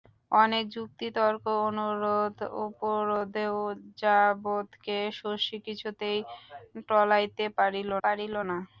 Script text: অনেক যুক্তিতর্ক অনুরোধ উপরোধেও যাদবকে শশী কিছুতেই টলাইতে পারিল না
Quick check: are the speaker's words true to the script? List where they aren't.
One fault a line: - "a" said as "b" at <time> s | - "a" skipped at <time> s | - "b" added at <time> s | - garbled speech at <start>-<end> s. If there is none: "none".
- "পারিল" added at 8.0 s